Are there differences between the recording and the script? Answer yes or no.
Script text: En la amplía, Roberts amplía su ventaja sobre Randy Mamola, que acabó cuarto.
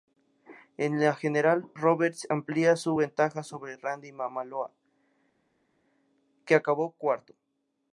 yes